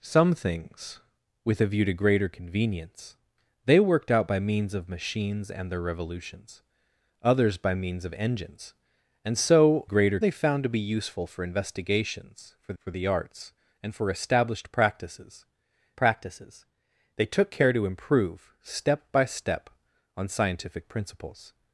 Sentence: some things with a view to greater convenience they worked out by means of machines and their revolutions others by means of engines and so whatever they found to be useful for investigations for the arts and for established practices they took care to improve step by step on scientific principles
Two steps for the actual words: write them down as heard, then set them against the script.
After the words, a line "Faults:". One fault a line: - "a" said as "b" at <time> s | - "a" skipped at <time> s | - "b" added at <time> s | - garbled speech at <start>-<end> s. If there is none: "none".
some things with a view to greater convenience they worked out by means of machines and their revolutions others by means of engines and so greater they found to be useful for investigations for for the arts and for established practices practices they took care to improve step by step on scientific principles
Faults:
- "whatever" said as "greater" at 9.8 s
- "for" added at 12.8 s
- "practices" added at 15.9 s